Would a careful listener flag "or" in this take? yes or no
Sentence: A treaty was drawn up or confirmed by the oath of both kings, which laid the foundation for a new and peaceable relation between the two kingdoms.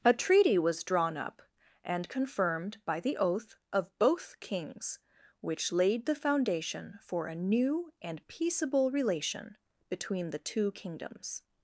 yes